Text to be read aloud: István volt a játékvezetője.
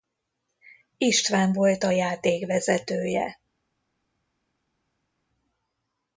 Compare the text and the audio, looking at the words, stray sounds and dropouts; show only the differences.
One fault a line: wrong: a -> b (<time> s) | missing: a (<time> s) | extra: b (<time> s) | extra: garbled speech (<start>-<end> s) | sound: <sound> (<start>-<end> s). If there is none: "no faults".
no faults